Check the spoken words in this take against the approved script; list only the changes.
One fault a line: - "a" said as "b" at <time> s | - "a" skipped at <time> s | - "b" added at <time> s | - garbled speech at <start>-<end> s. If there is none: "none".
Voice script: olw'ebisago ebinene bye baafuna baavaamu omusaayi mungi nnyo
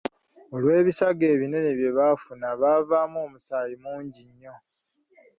none